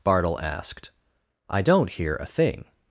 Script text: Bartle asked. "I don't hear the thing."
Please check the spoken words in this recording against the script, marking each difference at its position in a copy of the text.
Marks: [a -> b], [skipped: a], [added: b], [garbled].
Bartle asked. "I don't hear [the -> a] thing."